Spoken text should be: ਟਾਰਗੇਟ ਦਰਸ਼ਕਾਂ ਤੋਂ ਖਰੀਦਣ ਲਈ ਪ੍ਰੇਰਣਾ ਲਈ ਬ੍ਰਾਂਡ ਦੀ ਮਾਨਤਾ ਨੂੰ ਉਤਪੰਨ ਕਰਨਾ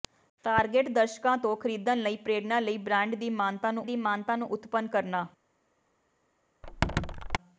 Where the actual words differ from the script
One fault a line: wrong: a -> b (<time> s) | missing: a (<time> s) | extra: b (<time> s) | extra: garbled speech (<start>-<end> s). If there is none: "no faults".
extra: ਦੀ ਮਾਨਤਾ ਨੂੰ (3.8 s)